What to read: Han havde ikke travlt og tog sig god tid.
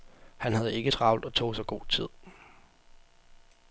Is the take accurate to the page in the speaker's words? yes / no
yes